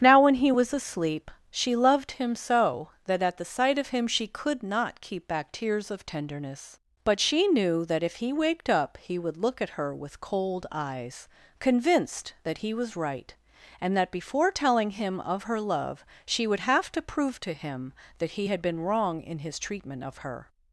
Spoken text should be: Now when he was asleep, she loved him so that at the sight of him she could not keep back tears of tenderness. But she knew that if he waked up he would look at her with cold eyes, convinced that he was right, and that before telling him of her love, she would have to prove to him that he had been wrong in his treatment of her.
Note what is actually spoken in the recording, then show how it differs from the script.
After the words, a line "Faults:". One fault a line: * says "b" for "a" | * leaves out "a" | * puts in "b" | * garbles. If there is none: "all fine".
Now when he was asleep, she loved him so that at the sight of him she could not keep back tears of tenderness. But she knew that if he waked up he would look at her with cold eyes, convinced that he was right, and that before telling him of her love, she would have to prove to him that he had been wrong in his treatment of her.
Faults:
all fine